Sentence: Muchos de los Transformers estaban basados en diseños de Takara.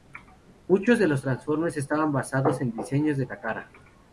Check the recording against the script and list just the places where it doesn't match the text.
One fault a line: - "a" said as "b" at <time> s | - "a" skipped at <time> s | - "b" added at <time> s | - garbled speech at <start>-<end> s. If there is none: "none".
none